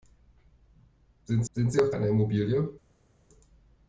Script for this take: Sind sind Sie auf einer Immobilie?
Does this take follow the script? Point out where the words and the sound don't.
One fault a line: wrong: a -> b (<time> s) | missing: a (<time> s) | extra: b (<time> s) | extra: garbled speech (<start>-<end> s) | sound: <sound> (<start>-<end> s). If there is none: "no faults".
no faults